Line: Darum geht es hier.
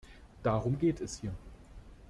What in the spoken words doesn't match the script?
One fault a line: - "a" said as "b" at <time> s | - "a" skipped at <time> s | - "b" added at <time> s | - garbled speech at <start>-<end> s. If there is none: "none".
none